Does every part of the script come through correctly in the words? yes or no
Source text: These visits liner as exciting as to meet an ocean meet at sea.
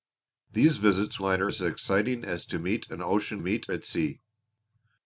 yes